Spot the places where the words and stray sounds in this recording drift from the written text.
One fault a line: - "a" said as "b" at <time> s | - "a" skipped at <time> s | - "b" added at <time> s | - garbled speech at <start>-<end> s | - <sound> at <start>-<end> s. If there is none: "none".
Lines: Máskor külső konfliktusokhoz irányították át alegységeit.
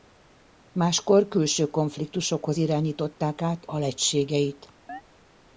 - chirp at 4.9-5.0 s